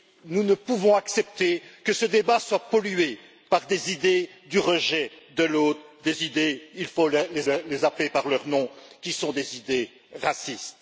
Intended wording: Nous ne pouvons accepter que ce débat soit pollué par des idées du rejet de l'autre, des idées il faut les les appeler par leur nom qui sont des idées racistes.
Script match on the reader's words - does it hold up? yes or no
yes